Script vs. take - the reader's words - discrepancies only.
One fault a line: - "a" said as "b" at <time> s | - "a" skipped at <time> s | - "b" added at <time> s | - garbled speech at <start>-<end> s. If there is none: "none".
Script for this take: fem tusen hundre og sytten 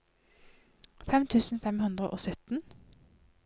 - "fem" added at 1.7 s